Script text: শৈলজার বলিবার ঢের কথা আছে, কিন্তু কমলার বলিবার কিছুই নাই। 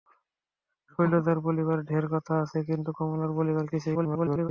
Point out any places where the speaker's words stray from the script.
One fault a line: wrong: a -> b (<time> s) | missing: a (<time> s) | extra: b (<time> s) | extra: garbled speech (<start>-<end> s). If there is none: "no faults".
extra: garbled speech (3.9-4.5 s)